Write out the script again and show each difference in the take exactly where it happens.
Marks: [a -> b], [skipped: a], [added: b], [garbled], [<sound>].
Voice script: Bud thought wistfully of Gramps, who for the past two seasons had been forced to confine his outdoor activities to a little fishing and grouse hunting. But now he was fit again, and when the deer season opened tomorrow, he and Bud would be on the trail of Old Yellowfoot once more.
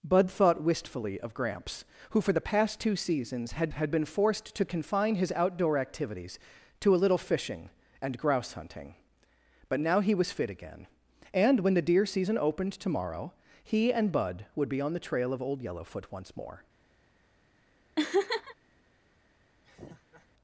Bud thought wistfully of Gramps, who for the past two seasons had [added: had] been forced to confine his outdoor activities to a little fishing and grouse hunting. But now he was fit again, and when the deer season opened tomorrow, he and Bud would be on the trail of Old Yellowfoot once more. [laugh] [laugh]